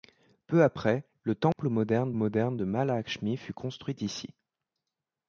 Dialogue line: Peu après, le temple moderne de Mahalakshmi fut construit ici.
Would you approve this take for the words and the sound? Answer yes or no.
no